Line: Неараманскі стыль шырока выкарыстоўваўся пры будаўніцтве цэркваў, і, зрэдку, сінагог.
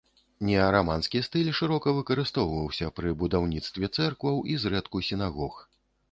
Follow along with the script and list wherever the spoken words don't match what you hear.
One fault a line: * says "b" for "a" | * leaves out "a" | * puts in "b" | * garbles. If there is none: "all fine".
all fine